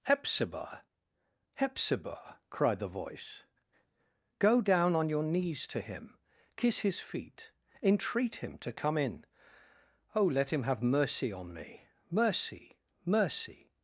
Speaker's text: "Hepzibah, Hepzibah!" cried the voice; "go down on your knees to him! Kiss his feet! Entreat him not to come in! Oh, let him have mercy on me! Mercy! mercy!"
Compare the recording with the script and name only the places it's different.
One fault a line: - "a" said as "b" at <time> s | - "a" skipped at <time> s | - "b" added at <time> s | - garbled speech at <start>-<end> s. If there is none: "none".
- "not" skipped at 8.6 s